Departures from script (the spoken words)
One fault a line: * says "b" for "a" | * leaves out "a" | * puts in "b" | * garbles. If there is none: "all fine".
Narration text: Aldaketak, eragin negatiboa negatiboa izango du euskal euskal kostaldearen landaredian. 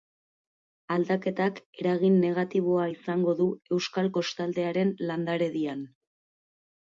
* leaves out "negatiboa"
* leaves out "euskal"